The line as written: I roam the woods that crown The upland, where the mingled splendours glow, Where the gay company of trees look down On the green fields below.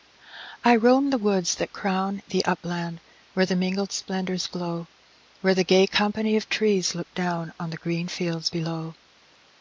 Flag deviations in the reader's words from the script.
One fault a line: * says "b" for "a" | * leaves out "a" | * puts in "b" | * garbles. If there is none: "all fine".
all fine